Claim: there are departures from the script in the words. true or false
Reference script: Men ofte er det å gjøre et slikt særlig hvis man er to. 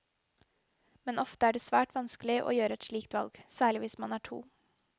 true